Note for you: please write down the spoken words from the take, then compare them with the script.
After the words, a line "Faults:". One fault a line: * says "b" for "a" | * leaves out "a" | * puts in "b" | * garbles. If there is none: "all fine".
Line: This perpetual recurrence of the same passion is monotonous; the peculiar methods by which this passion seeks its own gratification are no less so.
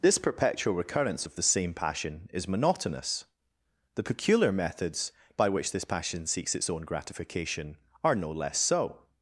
This perpetual recurrence of the same passion is monotonous; the peculiar methods by which this passion seeks its own gratification are no less so.
Faults:
all fine